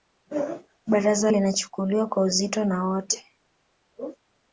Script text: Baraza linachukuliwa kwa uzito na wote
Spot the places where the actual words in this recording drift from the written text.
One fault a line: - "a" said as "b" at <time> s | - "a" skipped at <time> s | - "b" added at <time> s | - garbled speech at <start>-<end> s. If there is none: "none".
none